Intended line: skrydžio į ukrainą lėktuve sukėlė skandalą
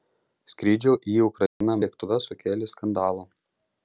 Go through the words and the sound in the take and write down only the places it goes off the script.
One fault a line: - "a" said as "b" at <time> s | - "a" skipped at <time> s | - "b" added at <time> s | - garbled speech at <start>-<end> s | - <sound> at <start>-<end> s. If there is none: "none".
- dropout at 1.5-1.6 s